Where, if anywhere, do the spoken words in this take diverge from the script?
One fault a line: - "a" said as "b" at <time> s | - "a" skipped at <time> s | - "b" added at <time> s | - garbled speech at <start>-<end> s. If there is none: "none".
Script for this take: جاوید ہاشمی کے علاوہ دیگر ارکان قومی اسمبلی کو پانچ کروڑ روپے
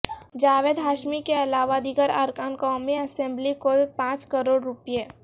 none